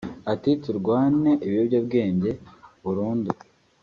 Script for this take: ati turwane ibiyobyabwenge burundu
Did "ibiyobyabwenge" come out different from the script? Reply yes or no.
no